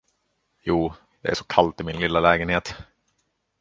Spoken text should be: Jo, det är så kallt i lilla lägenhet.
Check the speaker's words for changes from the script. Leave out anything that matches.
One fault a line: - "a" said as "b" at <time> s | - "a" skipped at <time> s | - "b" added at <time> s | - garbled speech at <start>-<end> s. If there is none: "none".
- "min" added at 1.8 s